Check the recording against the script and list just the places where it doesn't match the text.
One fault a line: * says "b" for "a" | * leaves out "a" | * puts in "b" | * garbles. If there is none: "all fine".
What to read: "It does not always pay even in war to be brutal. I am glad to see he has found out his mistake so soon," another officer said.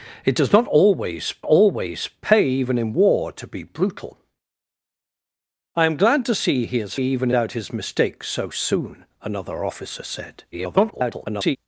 * puts in "always"
* says "even" for "found"
* garbles